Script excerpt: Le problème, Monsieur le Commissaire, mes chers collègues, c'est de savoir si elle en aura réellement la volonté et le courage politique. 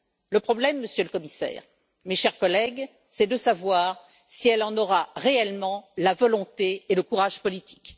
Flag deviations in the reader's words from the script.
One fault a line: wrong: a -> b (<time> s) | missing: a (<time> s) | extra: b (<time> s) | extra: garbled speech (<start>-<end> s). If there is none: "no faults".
no faults